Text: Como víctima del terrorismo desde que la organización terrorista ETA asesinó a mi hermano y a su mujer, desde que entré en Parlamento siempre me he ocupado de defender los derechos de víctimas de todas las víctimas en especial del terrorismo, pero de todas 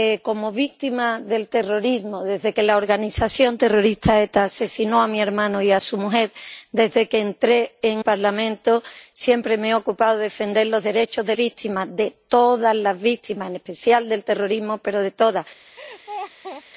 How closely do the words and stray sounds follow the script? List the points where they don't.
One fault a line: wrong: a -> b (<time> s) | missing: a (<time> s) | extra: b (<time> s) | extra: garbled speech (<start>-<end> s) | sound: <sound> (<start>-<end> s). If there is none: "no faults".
sound: laugh (15.8-16.6 s)